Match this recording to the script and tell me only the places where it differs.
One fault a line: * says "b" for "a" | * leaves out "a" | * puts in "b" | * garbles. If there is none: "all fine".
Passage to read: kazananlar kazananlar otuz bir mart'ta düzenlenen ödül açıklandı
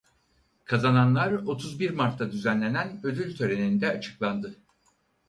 * leaves out "kazananlar"
* puts in "töreninde"